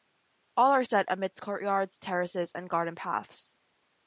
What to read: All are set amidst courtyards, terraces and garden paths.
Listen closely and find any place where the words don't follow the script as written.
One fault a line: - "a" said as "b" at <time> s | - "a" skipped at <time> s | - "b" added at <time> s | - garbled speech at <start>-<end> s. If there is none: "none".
none